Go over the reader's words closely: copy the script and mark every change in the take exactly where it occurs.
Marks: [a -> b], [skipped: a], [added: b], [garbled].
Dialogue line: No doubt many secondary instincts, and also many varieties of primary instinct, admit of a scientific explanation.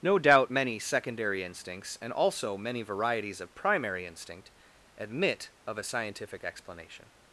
No doubt many secondary instincts, and also many varieties of primary instinct, admit of a scientific explanation.